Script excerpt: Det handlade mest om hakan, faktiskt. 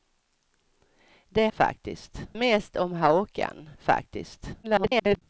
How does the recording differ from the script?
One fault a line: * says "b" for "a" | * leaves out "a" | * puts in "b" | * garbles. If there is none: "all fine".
* says "faktiskt" for "handlade"
* garbles